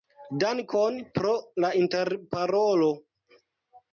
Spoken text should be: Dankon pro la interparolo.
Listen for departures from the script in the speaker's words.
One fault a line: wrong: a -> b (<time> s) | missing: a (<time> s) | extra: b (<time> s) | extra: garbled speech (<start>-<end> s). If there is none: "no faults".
no faults